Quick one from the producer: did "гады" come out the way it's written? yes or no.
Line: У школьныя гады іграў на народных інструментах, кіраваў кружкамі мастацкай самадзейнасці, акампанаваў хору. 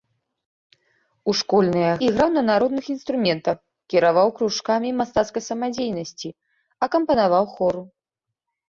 no